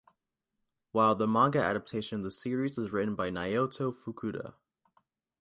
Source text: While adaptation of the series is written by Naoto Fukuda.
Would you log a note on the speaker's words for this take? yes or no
yes